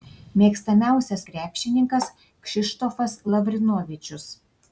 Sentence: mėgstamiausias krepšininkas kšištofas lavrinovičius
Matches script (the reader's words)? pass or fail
pass